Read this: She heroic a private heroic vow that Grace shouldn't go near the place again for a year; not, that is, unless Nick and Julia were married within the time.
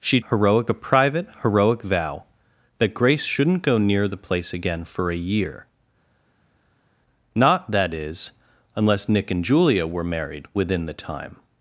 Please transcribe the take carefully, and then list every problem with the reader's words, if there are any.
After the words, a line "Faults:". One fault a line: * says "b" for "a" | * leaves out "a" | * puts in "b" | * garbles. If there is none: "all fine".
She heroic a private heroic vow that Grace shouldn't go near the place again for a year; not, that is, unless Nick and Julia were married within the time.
Faults:
all fine